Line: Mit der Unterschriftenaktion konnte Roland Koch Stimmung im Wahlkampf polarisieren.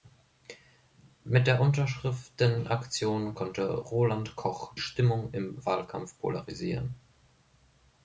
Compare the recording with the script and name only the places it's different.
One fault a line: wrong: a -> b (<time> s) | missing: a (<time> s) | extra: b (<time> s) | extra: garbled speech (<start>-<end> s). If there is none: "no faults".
no faults